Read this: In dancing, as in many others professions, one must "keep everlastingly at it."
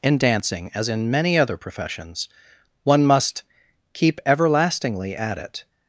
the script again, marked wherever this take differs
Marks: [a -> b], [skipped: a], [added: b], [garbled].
In dancing, as in many [others -> other] professions, one must "keep everlastingly at it."